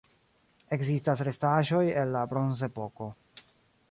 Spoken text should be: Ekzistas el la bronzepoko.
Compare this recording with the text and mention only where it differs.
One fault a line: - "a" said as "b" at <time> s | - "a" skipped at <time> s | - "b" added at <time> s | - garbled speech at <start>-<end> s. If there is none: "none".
- "restaĵoj" added at 1.3 s